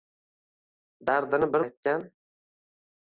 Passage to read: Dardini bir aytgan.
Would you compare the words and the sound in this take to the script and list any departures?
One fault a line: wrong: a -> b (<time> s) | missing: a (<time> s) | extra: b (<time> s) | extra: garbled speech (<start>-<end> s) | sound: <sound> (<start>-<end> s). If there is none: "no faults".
no faults